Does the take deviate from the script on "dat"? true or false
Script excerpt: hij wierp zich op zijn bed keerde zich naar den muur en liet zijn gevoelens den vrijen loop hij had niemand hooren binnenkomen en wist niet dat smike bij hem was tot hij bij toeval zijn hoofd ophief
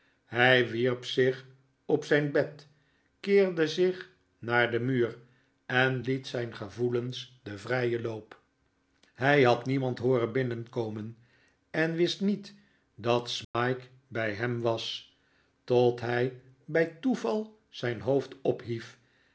false